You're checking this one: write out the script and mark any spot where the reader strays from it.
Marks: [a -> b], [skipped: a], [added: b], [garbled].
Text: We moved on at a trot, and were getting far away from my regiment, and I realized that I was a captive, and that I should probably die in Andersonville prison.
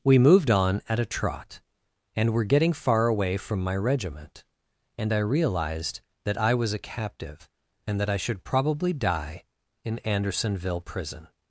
We moved on at a trot, and were getting far away from my regiment, and I realized that I was a captive, and that I should probably die in Andersonville prison.